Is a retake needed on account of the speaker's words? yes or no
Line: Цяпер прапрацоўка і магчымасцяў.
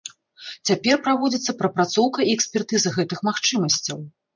yes